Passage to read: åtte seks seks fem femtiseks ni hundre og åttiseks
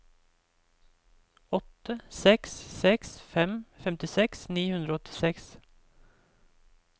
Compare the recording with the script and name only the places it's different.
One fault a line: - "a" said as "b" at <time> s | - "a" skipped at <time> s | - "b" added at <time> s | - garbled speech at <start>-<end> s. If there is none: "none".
none